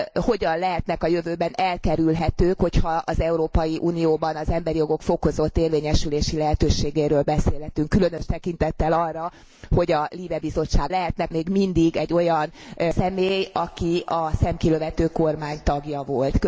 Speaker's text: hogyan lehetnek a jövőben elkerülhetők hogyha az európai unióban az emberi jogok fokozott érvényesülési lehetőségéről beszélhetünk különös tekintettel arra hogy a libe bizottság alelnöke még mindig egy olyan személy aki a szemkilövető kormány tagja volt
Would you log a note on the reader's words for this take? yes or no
yes